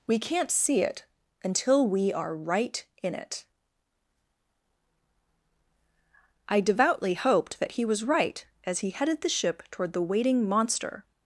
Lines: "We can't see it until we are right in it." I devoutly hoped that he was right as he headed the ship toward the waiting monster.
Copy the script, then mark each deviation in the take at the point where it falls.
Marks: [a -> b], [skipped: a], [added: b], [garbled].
"We can't see it until we are right in it." I devoutly hoped that he was right as he headed the ship toward the waiting monster.